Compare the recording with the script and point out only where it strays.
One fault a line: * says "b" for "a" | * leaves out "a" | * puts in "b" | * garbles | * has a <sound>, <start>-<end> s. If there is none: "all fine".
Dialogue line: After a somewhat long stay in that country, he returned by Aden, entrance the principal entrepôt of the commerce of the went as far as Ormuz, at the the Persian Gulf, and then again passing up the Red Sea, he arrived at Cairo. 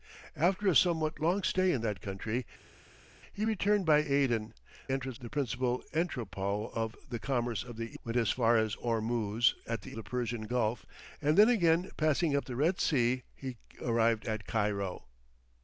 all fine